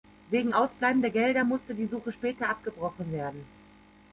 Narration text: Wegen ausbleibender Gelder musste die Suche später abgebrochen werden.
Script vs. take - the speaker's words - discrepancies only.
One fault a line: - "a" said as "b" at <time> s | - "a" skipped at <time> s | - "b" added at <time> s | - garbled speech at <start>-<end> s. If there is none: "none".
none